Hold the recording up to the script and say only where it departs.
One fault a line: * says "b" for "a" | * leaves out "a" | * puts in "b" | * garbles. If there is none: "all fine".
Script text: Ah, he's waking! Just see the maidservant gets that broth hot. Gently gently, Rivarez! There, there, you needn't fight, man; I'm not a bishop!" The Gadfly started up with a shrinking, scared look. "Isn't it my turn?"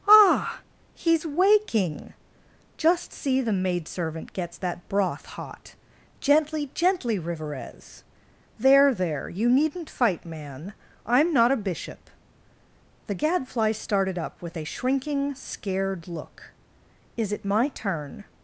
* says "Is" for "Isn't"